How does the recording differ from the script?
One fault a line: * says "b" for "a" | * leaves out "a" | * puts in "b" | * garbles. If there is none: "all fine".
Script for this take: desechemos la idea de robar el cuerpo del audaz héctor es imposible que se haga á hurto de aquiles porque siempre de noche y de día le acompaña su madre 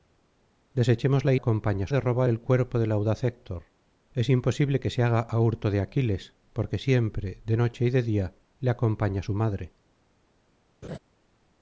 * says "acompaña" for "idea"